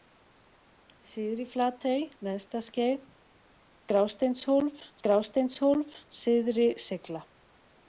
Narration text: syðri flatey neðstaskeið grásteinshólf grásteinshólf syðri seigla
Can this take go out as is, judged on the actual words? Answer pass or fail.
pass